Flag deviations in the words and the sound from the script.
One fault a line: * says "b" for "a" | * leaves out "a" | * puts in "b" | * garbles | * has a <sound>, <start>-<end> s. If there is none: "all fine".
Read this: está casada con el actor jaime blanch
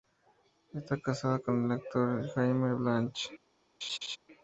* has a laugh, 3.8-4.2 s